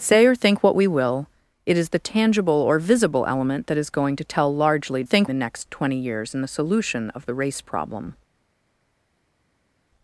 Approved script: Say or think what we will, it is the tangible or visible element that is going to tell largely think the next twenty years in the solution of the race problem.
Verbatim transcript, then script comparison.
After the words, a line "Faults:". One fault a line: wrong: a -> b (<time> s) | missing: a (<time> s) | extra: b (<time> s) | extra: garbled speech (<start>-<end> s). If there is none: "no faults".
Say or think what we will, it is the tangible or visible element that is going to tell largely think the next twenty years in the solution of the race problem.
Faults:
no faults